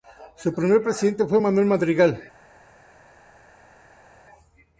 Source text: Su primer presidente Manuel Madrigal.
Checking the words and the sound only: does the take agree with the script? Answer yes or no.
no